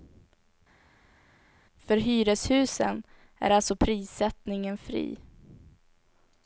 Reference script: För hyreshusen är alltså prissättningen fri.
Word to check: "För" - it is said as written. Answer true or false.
true